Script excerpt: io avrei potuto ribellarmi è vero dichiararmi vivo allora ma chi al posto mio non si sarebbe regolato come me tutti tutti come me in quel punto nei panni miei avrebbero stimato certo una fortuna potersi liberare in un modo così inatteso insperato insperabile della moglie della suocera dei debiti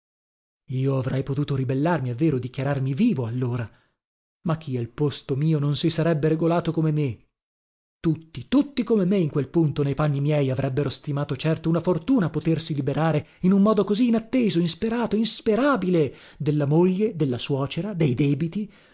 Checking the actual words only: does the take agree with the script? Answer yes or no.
yes